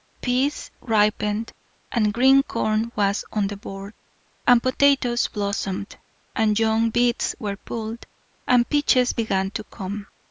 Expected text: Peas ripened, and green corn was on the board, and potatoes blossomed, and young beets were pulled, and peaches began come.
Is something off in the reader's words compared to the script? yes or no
yes